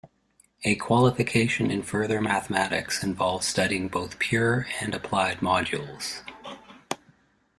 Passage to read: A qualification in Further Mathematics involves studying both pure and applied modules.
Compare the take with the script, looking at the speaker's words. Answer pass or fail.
pass